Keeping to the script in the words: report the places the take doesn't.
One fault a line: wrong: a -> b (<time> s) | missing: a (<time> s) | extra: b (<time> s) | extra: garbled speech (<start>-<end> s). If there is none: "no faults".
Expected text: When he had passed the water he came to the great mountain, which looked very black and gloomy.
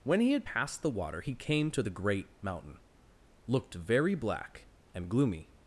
missing: which (2.8 s)